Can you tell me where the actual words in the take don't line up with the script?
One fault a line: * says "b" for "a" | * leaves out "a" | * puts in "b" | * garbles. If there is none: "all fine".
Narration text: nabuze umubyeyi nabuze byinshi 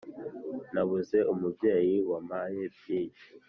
* says "wampaye" for "nabuze"